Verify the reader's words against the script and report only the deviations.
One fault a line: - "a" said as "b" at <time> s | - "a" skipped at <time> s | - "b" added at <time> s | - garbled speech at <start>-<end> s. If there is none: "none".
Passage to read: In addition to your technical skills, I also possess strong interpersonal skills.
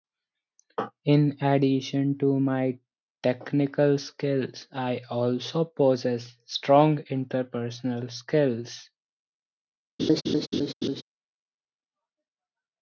- "your" said as "my" at 2.4 s